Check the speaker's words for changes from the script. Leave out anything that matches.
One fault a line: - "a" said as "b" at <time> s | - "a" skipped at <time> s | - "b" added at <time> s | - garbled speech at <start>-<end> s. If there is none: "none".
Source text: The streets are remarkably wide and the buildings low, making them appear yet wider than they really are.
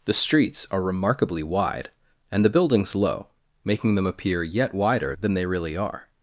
none